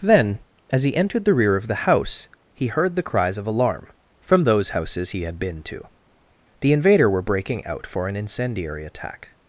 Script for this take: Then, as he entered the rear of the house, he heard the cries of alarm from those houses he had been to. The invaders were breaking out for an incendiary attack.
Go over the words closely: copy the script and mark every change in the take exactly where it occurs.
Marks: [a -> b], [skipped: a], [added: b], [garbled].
Then, as he entered the rear of the house, he heard the cries of alarm from those houses he had been to. The [invaders -> invader] were breaking out for an incendiary attack.